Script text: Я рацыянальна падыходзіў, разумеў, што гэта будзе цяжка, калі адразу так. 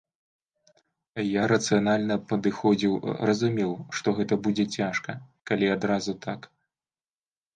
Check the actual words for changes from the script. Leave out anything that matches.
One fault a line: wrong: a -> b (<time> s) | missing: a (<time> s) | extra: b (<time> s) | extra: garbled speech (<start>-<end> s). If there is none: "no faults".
no faults